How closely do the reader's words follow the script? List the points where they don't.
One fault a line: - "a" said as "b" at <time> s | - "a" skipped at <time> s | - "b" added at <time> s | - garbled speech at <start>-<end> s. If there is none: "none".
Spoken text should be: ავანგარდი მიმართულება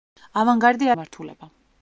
none